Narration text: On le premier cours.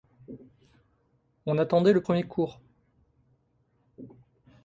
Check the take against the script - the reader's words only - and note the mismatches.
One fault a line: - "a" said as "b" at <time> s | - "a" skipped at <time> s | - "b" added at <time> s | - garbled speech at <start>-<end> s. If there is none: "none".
- "attendait" added at 1.6 s